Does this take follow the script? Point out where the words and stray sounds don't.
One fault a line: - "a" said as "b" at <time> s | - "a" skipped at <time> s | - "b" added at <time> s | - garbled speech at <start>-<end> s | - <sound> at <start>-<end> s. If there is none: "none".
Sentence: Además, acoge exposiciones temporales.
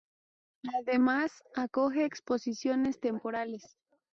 none